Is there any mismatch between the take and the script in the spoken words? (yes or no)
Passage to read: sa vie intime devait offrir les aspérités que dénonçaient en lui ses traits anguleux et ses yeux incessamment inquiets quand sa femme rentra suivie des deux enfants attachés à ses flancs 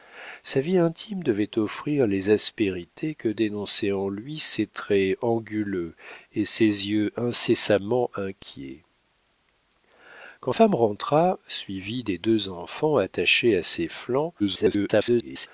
yes